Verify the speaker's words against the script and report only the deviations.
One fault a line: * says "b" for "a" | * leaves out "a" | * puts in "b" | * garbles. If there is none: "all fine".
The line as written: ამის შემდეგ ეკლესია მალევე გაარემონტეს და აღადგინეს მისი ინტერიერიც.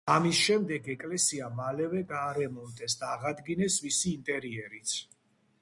all fine